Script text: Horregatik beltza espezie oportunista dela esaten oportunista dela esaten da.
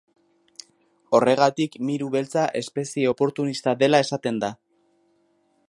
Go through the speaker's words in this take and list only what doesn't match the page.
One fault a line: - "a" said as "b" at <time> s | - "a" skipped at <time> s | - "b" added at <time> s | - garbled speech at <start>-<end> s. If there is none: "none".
- "miru" added at 1.9 s
- "oportunista dela esaten" skipped at 4.4 s